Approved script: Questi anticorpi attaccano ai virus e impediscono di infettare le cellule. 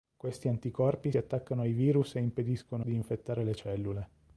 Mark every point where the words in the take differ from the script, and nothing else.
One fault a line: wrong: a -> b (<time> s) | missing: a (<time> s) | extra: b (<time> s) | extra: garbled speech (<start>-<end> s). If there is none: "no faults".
no faults